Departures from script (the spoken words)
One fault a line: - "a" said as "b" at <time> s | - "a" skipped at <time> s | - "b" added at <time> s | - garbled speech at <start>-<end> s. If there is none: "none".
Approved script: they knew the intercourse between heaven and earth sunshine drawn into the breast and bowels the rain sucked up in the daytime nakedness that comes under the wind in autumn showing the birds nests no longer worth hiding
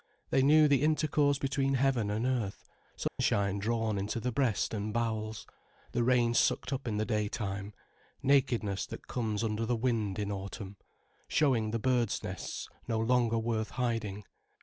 none